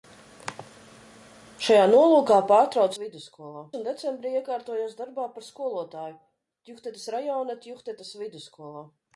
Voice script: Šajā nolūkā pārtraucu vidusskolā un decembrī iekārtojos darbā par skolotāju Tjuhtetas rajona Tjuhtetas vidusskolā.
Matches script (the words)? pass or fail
pass